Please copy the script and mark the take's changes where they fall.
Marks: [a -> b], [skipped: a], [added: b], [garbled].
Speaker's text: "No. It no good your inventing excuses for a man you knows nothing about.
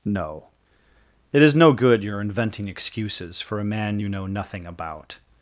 "No. It [added: is] no good your inventing excuses for a man you [knows -> know] nothing about.